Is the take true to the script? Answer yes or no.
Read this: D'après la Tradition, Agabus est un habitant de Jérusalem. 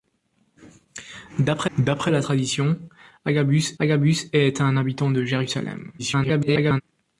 no